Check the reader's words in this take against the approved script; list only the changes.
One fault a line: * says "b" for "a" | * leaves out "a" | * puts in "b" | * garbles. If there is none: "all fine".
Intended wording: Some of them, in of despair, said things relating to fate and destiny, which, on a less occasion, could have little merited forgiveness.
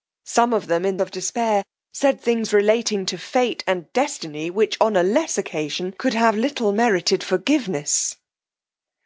all fine